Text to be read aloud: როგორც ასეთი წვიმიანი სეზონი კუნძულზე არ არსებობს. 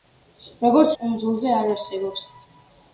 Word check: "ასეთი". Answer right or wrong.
wrong